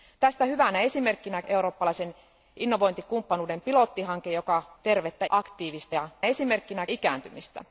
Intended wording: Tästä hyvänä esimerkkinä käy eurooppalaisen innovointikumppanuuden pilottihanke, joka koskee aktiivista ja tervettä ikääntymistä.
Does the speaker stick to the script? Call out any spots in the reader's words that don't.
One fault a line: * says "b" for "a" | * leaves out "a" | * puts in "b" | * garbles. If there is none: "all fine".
* leaves out "käy"
* says "tervettä" for "koskee"
* says "esimerkkinä" for "tervettä"